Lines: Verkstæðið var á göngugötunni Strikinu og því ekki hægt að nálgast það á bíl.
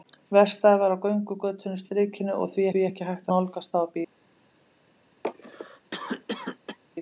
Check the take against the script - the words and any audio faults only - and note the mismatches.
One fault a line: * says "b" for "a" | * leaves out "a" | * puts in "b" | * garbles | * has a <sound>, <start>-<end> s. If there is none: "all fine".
* puts in "því"
* leaves out "að"
* has a cough, 5.2-6.8 s